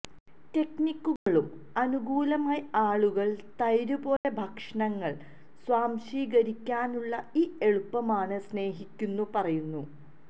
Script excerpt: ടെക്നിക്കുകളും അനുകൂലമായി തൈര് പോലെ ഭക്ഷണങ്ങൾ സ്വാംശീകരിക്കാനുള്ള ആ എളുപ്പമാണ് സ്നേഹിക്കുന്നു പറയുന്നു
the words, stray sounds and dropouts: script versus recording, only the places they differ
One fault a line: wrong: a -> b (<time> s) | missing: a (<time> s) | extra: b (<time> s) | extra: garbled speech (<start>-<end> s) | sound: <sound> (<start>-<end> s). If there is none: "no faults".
sound: dropout (1.2-1.3 s)
extra: ആളുകൾ (2.8 s)
sound: dropout (4.2-4.2 s)
wrong: ആ -> ഈ (7.4 s)